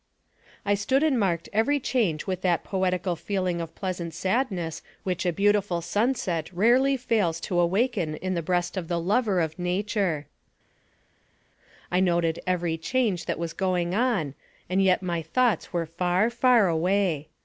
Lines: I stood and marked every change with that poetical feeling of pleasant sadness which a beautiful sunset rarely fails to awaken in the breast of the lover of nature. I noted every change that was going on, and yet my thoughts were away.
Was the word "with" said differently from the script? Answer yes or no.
no